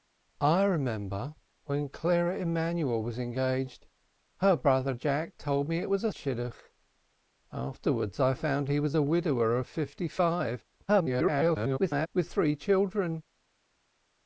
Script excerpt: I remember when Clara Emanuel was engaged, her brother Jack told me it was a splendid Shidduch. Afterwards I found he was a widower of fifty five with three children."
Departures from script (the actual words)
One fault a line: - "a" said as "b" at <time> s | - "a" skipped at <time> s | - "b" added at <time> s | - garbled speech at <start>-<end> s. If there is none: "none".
- "splendid" skipped at 6.1 s
- garbled speech at 10.9-12.1 s